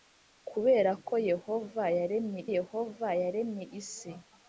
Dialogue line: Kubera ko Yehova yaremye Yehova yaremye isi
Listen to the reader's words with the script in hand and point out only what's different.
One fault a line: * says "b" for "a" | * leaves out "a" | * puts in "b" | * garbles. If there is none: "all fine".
all fine